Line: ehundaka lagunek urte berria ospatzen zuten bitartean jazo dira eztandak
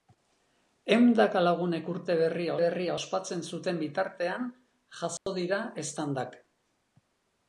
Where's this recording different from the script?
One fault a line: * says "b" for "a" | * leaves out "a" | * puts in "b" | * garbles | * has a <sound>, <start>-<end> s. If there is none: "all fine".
* puts in "berria"
* has a dropout, 5.2-5.3 s